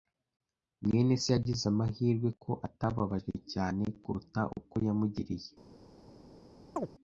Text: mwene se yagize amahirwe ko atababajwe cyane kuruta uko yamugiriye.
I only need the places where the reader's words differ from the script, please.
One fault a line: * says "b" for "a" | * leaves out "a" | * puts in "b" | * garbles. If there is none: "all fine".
all fine